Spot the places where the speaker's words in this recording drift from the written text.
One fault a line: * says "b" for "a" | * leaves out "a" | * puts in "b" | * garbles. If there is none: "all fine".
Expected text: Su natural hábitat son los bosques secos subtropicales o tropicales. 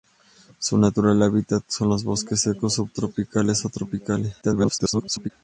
* garbles